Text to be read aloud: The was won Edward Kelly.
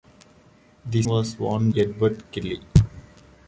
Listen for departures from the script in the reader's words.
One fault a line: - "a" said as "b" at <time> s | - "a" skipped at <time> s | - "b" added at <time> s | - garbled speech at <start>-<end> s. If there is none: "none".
none